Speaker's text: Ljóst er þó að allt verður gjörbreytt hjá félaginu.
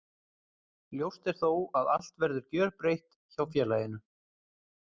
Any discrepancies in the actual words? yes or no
no